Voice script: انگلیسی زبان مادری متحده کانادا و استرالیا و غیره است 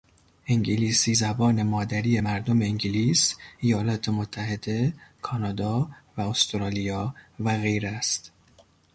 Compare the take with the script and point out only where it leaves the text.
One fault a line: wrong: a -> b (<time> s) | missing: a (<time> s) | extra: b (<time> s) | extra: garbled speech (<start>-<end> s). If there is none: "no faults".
extra: مردم انگلیس ایالات (2.2 s)